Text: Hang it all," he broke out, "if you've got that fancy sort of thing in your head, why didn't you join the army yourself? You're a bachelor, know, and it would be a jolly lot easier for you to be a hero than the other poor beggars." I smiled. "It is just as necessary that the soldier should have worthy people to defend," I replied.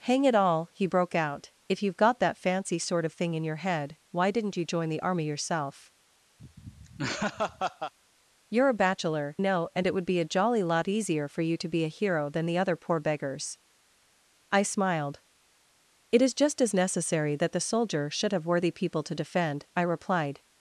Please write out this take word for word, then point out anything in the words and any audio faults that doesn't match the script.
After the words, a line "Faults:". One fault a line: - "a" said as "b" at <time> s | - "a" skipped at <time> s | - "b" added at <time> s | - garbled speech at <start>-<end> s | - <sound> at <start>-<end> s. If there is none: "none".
Hang it all," he broke out, "if you've got that fancy sort of thing in your head, why didn't you join the army yourself? You're a bachelor, know, and it would be a jolly lot easier for you to be a hero than the other poor beggars." I smiled. "It is just as necessary that the soldier should have worthy people to defend," I replied.
Faults:
- laugh at 6.4-7.9 s